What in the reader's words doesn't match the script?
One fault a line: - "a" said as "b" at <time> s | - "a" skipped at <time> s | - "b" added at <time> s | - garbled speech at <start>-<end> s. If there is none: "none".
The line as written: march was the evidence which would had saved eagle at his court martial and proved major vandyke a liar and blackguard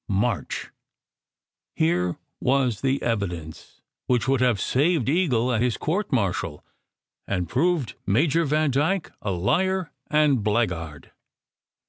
- "here" added at 1.8 s
- "had" said as "have" at 4.4 s